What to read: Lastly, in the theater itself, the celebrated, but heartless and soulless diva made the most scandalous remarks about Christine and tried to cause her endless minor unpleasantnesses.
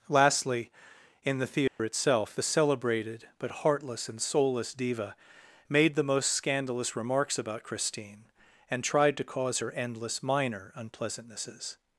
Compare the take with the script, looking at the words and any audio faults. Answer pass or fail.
fail